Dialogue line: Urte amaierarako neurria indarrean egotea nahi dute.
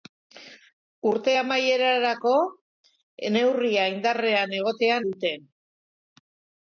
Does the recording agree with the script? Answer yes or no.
no